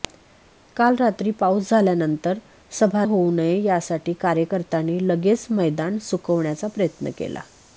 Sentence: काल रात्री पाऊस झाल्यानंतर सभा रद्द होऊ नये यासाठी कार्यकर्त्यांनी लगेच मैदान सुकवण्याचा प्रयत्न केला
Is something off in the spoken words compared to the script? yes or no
yes